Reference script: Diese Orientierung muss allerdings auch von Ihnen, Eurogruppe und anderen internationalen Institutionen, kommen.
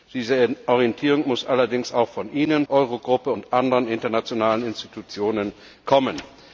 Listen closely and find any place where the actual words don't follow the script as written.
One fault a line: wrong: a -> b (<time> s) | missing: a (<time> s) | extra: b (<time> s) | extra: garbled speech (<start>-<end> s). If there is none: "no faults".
no faults